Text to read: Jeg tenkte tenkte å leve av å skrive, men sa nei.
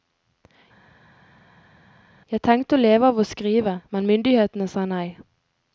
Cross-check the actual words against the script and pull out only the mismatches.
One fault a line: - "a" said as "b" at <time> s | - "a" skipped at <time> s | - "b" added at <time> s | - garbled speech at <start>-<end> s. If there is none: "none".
- "tenkte" skipped at 2.8 s
- "myndighetene" added at 4.1 s